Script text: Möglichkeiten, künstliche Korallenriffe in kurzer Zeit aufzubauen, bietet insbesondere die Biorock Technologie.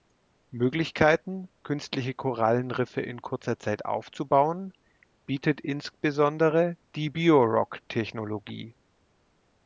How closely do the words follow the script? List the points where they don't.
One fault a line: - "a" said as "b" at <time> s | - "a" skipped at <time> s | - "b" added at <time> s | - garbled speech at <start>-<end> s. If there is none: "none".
none